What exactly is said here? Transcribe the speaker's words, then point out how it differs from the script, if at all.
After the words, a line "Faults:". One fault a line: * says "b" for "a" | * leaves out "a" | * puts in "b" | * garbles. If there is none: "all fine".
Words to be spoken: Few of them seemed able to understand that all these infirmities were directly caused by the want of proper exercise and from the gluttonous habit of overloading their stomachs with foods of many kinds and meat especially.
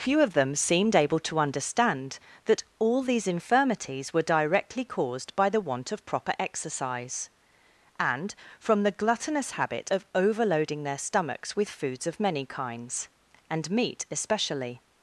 Few of them seemed able to understand that all these infirmities were directly caused by the want of proper exercise and from the gluttonous habit of overloading their stomachs with foods of many kinds and meat especially.
Faults:
all fine